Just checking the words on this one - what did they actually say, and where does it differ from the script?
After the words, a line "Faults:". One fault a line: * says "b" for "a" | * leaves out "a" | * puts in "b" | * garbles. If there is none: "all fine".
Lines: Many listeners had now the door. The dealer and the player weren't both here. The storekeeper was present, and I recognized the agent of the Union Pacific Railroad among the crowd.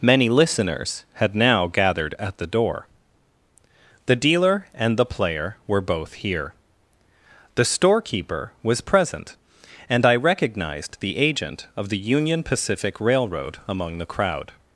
Many listeners had now gathered at the door. The dealer and the player were both here. The storekeeper was present, and I recognized the agent of the Union Pacific Railroad among the crowd.
Faults:
* puts in "gathered at"
* says "were" for "weren't"